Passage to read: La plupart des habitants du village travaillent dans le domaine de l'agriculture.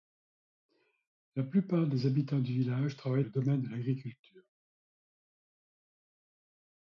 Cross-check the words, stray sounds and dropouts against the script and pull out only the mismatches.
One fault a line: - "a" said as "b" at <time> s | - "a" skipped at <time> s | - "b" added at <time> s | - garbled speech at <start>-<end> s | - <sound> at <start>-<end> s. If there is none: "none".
- "dans" skipped at 3.2 s